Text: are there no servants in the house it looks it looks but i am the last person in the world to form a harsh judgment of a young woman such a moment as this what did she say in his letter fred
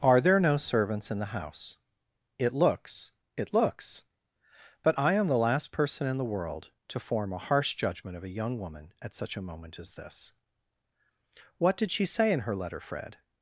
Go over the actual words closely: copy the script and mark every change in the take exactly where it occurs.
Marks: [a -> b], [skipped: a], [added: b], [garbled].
are there no servants in the house it looks it looks but i am the last person in the world to form a harsh judgment of a young woman [added: at] such a moment as this what did she say in [his -> her] letter fred